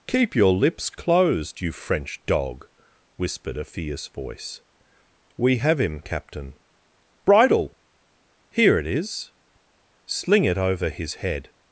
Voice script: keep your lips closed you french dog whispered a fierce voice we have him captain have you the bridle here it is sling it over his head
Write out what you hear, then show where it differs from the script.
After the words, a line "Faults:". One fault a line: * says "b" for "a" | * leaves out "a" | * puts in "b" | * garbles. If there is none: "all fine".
keep your lips closed you french dog whispered a fierce voice we have him captain bridle here it is sling it over his head
Faults:
* leaves out "have you the"